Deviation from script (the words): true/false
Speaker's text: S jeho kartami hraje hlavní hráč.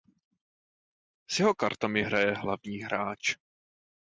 false